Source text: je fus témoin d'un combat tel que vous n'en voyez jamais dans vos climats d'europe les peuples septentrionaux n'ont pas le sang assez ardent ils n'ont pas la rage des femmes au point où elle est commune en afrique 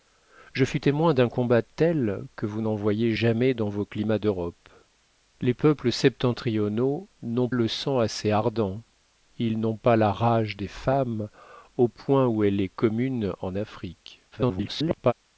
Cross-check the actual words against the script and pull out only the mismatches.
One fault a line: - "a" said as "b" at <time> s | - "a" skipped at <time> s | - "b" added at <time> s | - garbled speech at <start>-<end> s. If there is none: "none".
- "pas" skipped at 7.5 s
- garbled speech at 14.3-15.1 s